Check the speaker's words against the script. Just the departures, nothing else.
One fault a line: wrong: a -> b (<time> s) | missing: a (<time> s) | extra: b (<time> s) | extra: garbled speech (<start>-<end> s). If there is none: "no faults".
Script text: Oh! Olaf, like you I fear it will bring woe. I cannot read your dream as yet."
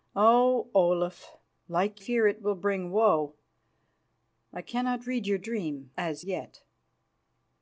missing: you I (2.0 s)